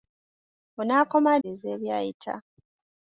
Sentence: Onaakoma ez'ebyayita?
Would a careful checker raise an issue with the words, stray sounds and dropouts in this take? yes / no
no